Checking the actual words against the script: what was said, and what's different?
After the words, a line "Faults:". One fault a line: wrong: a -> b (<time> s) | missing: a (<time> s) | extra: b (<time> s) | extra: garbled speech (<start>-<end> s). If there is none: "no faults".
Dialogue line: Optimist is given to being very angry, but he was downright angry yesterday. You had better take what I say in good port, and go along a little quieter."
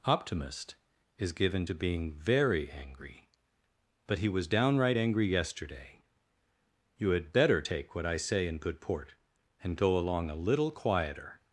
Optimist is given to being very angry, but he was downright angry yesterday. You had better take what I say in good port, and go along a little quieter."
Faults:
no faults